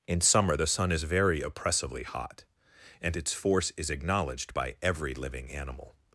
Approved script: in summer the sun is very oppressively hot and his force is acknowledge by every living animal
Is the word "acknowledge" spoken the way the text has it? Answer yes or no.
no